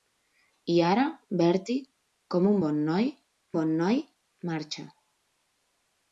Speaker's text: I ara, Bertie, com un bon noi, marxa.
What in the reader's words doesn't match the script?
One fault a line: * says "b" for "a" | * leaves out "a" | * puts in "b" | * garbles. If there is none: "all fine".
* puts in "bon noi"